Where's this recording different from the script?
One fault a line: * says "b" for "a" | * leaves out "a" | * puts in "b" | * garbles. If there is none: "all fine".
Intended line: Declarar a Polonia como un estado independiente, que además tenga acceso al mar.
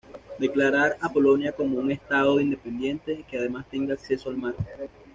all fine